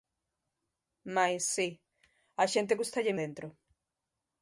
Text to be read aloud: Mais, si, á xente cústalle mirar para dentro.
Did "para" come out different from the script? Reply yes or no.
yes